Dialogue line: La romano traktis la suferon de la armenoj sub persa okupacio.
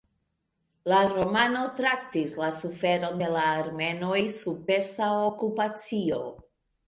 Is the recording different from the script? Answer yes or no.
no